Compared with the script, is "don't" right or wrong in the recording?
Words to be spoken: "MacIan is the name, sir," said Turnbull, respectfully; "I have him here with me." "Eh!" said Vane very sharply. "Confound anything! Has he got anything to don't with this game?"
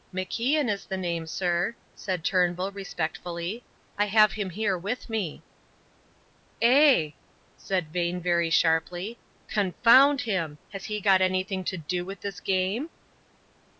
wrong